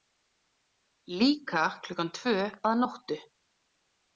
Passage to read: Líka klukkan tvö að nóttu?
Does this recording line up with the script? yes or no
yes